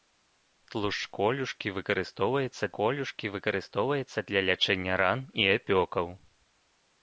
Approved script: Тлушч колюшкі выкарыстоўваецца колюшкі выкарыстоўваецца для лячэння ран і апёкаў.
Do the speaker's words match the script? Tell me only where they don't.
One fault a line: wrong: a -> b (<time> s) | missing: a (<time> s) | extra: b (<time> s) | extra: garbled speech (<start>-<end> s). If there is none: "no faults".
no faults